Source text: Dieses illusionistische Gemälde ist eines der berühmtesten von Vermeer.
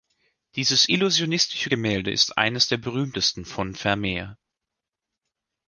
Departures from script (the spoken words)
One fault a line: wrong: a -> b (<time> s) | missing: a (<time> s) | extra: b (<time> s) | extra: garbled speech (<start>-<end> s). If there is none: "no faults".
no faults